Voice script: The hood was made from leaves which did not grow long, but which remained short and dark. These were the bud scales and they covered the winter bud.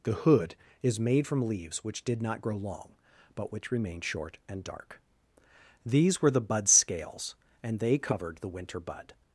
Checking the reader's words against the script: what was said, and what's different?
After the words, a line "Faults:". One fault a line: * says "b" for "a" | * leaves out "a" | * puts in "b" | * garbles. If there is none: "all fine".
The hood is made from leaves which did not grow long, but which remained short and dark. These were the bud scales and they covered the winter bud.
Faults:
* says "is" for "was"